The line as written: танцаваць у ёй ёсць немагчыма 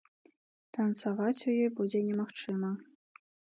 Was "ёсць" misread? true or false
true